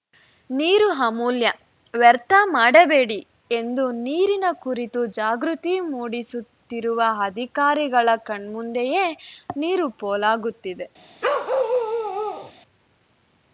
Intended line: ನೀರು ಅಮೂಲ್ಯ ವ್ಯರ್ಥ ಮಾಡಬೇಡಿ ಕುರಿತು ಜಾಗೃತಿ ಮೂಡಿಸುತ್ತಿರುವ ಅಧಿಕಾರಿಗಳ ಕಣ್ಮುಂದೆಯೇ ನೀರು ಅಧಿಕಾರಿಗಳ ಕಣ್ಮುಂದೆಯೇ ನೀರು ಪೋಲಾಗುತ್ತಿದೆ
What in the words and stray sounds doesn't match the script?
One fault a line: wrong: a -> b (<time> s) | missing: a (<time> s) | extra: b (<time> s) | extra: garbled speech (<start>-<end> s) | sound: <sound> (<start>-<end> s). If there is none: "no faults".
extra: ಎಂದು ನೀರಿನ (3.5 s)
missing: ಅಧಿಕಾರಿಗಳ ಕಣ್ಮುಂದೆಯೇ ನೀರು (9.9 s)
sound: bark (11.2-12.5 s)